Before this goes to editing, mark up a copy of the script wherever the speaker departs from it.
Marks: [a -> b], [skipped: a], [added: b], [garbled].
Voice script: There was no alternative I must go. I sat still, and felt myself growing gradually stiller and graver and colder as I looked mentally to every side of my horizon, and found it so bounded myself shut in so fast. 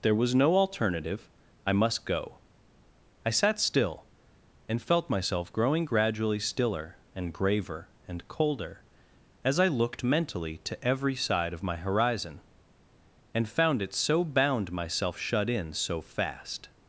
There was no alternative I must go. I sat still, and felt myself growing gradually stiller and graver and colder as I looked mentally to every side of my horizon, and found it so [bounded -> bound] myself shut in so fast.